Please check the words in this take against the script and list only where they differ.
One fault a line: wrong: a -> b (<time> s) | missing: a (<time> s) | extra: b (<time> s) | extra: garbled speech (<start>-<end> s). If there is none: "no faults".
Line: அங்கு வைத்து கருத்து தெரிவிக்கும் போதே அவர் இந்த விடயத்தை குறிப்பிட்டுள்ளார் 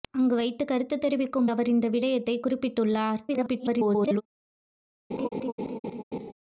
missing: போதே (1.5 s)
extra: garbled speech (3.3-4.2 s)